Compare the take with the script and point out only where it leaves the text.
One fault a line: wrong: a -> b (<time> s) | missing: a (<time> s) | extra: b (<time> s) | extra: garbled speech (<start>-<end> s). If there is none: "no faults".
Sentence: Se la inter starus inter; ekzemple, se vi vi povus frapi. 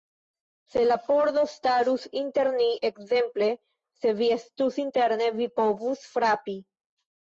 wrong: inter -> pordo (1.1 s)
extra: ni (2.6 s)
extra: estus interne (4.4 s)